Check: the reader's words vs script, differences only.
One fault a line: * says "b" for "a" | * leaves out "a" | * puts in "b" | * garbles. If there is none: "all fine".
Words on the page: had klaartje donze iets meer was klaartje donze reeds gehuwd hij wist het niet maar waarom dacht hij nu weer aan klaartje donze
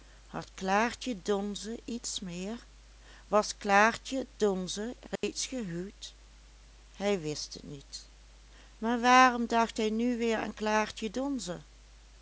all fine